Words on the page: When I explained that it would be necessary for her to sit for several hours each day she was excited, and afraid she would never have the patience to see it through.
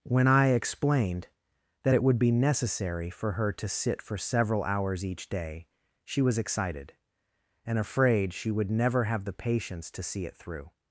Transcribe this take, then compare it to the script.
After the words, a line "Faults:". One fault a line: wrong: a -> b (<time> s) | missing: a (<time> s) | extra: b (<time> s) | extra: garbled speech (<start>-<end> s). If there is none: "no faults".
When I explained that it would be necessary for her to sit for several hours each day she was excited, and afraid she would never have the patience to see it through.
Faults:
no faults